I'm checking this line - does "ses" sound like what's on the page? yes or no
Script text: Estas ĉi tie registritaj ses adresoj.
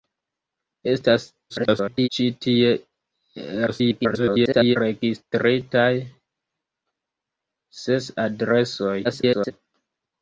yes